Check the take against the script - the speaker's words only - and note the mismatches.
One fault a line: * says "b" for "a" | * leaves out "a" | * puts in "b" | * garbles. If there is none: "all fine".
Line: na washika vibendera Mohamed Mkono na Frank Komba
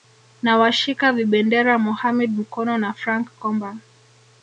all fine